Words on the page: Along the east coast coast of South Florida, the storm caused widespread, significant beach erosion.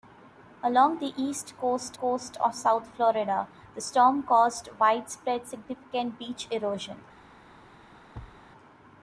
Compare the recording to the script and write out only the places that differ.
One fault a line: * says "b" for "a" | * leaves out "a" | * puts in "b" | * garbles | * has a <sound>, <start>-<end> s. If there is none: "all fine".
* has a thud, 8.1-8.4 s